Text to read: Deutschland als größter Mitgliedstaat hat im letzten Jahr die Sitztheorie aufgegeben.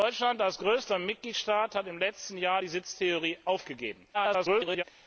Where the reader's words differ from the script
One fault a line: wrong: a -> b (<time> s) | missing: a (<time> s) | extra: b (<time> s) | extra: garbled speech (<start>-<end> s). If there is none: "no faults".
extra: garbled speech (4.1-4.8 s)